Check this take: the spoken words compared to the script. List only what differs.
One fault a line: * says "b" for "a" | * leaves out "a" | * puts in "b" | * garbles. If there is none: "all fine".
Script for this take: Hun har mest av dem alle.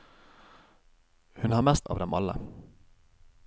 all fine